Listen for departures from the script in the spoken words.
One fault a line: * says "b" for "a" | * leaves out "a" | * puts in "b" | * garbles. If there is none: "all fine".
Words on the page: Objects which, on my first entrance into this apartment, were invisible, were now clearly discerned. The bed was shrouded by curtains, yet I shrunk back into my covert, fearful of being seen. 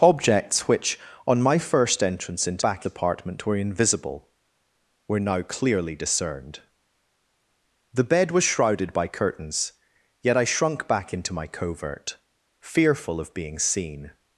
* says "back" for "this"